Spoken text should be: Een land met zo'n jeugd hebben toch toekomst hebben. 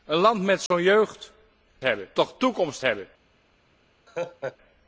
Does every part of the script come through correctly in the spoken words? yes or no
yes